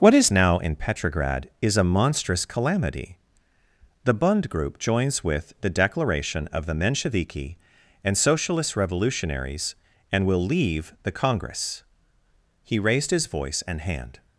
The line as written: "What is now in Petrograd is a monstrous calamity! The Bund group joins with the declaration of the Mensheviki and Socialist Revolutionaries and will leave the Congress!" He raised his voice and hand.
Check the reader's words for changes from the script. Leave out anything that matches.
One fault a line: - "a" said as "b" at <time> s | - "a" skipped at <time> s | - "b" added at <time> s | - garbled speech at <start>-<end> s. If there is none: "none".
none